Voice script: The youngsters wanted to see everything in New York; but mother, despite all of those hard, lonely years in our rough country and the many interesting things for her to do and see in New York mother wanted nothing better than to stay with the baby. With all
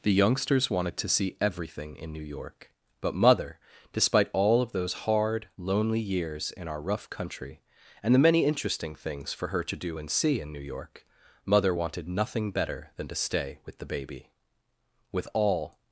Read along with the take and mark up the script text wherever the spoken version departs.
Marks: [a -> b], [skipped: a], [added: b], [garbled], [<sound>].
The youngsters wanted to see everything in New York; but mother, despite all of those hard, lonely years in our rough country and the many interesting things for her to do and see in New York mother wanted nothing better than to stay with the baby. With all